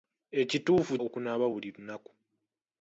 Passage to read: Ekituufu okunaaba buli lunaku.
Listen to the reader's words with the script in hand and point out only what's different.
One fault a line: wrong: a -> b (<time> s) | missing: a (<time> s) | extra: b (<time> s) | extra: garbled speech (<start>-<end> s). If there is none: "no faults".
no faults